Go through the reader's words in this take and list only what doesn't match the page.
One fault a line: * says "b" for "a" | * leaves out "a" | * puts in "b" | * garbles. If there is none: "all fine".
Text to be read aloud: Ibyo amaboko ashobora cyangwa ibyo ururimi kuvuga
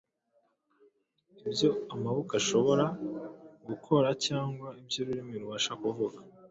* puts in "gukora"
* puts in "rubasha"